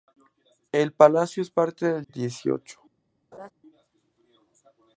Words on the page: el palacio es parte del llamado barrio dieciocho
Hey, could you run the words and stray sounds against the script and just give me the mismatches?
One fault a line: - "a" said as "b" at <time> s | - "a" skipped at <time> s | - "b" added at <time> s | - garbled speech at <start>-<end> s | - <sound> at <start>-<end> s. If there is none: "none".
- "llamado barrio" skipped at 2.0 s
- laugh at 3.3-3.5 s